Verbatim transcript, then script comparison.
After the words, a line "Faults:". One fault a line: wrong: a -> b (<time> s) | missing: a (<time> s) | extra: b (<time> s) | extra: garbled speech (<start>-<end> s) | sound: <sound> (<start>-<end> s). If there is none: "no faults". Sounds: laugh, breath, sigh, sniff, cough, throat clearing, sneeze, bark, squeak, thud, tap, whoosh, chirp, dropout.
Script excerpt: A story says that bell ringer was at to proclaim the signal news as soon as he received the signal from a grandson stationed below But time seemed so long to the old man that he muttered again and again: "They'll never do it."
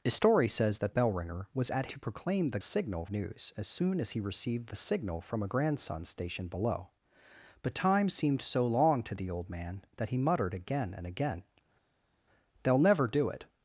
A story says that bell ringer was at to proclaim the signal news as soon as he received the signal from a grandson stationed below But time seemed so long to the old man that he muttered again and again: "They'll never do it."
Faults:
no faults